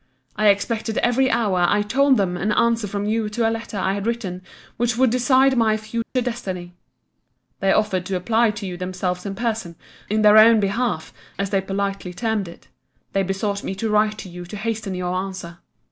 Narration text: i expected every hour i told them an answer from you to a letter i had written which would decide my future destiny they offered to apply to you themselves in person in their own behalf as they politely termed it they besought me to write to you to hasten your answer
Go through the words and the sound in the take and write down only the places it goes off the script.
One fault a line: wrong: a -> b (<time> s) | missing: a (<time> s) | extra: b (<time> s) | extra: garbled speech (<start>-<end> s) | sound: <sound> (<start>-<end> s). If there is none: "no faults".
sound: dropout (6.0-6.2 s)